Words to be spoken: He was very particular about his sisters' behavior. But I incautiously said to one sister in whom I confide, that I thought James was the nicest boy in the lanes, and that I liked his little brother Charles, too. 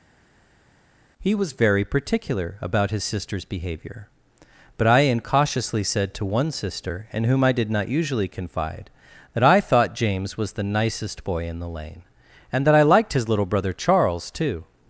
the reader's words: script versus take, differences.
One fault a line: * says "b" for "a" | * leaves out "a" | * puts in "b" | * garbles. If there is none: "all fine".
* puts in "did not usually"
* says "lane" for "lanes"